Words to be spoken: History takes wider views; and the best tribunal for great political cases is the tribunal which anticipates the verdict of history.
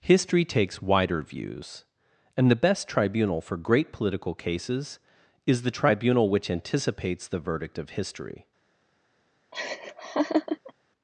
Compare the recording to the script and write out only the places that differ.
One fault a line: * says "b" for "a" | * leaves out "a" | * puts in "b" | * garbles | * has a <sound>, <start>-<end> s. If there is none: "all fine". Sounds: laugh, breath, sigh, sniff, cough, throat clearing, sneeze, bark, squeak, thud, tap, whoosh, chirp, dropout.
* has a laugh, 9.5-10.7 s